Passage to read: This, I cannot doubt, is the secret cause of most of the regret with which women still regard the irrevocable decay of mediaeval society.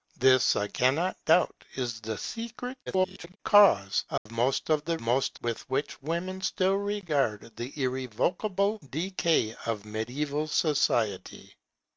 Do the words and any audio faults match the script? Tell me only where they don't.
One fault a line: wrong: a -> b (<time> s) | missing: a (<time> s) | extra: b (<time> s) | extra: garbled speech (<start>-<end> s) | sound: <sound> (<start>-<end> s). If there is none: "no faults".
extra: garbled speech (2.9-3.4 s)
sound: dropout (4.2-4.3 s)
wrong: regret -> most (5.0 s)